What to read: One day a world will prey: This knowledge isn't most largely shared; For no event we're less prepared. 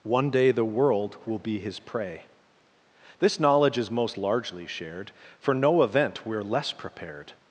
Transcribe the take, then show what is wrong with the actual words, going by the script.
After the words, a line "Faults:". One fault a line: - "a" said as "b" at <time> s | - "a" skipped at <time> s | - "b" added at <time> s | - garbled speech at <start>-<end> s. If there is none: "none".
One day the world will be his prey: This knowledge is most largely shared; For no event we're less prepared.
Faults:
- "a" said as "the" at 0.5 s
- "be his" added at 1.4 s
- "isn't" said as "is" at 3.8 s